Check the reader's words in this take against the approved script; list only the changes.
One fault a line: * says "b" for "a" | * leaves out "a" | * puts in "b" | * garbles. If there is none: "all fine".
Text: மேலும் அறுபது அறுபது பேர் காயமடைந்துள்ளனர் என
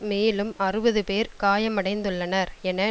* leaves out "அறுபது"